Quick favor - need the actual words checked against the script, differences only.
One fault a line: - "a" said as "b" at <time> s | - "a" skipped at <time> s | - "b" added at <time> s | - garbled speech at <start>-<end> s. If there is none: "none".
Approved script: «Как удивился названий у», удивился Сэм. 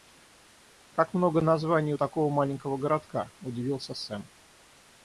- "удивился" said as "много" at 1.1 s
- "такого маленького городка" added at 2.0 s